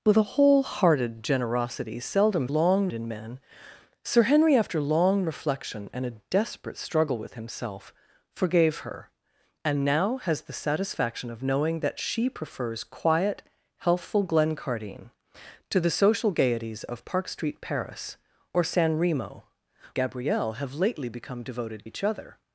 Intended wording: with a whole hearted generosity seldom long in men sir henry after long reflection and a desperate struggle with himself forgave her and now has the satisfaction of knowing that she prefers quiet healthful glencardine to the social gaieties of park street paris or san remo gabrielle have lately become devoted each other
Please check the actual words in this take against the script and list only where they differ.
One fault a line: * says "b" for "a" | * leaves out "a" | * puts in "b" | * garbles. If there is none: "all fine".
all fine